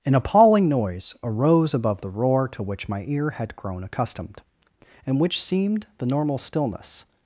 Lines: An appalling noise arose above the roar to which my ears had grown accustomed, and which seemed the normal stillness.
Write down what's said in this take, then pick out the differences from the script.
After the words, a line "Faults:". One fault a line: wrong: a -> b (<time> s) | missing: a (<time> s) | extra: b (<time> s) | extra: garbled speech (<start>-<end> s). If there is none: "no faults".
An appalling noise arose above the roar to which my ear had grown accustomed, and which seemed the normal stillness.
Faults:
wrong: ears -> ear (3.1 s)